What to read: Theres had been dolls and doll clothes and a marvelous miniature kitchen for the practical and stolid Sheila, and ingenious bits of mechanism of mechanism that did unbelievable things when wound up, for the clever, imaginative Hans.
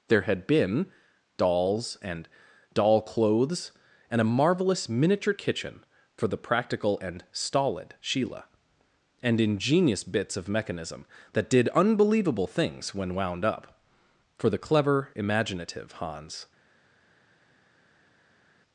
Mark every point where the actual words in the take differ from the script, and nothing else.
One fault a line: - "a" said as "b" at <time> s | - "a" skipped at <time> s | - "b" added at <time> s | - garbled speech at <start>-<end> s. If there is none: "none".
- "Theres" said as "There" at 0.1 s
- "of mechanism" skipped at 11.1 s